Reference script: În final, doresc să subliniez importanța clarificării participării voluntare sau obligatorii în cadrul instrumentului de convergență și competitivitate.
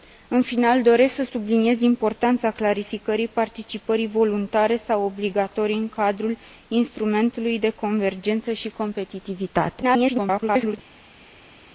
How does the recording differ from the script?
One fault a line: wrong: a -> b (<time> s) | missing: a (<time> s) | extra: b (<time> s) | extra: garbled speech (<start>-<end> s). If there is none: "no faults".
extra: garbled speech (9.8-10.8 s)